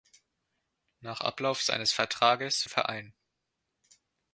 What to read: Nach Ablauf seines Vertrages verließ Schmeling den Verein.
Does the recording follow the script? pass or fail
fail